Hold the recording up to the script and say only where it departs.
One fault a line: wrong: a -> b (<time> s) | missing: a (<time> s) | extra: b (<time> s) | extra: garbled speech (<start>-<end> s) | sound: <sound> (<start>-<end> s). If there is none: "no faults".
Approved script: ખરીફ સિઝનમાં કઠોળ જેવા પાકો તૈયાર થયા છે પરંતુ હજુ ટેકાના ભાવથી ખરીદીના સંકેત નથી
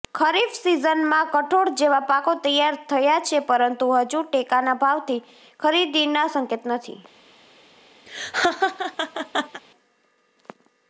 sound: laugh (8.1-9.6 s)